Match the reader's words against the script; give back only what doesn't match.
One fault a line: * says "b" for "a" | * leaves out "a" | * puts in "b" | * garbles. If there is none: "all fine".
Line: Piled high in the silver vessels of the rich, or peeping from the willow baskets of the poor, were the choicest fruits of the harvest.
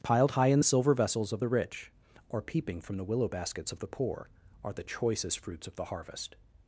* says "are" for "were"